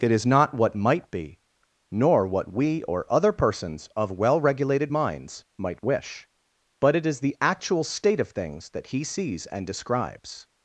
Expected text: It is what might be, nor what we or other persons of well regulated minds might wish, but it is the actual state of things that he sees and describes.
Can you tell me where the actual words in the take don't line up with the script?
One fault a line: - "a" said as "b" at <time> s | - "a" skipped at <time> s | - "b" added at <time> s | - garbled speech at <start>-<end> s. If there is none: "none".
- "not" added at 0.2 s